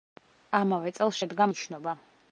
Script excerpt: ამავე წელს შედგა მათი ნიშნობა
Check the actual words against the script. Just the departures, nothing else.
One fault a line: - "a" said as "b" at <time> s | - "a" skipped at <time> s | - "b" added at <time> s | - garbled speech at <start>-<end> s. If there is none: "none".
- "მათი" skipped at 1.5 s